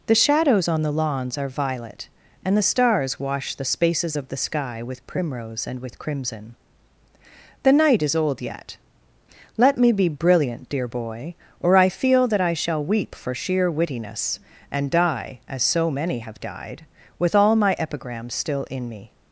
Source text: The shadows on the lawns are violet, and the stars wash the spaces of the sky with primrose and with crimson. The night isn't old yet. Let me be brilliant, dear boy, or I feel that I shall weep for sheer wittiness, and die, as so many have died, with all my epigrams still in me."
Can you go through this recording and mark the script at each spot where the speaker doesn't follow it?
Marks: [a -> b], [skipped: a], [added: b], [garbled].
The shadows on the lawns are violet, and the stars wash the spaces of the sky with primrose and with crimson. The night [isn't -> is] old yet. Let me be brilliant, dear boy, or I feel that I shall weep for sheer wittiness, and die, as so many have died, with all my epigrams still in me."